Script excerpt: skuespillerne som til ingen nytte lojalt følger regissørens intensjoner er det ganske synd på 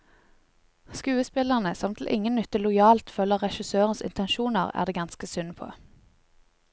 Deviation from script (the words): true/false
false